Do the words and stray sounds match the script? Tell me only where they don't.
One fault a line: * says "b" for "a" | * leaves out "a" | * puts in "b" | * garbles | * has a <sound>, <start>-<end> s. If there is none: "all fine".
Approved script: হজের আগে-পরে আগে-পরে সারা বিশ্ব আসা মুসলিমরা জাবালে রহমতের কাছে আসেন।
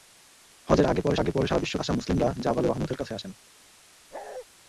* has a bark, 4.1-4.5 s